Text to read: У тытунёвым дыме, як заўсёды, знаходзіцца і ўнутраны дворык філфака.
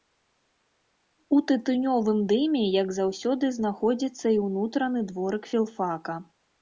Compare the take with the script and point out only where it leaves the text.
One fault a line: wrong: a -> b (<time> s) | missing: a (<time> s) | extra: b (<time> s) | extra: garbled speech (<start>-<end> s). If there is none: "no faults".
no faults